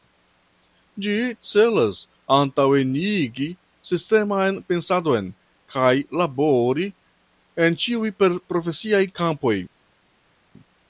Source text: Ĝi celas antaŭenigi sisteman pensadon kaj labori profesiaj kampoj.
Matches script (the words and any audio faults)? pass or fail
fail